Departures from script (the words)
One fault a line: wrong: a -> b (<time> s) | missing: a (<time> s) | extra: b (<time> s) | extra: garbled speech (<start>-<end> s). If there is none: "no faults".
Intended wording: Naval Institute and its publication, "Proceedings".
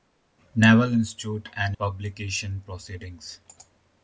missing: its (1.8 s)